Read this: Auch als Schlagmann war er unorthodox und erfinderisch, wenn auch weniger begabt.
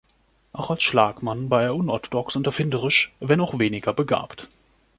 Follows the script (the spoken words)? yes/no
yes